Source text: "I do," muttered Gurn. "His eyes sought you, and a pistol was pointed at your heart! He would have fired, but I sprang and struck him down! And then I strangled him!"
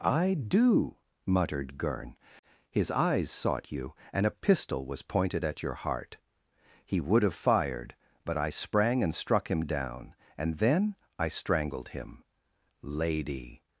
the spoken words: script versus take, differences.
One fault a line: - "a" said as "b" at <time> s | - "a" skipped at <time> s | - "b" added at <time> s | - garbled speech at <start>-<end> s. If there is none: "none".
- "Lady" added at 12.8 s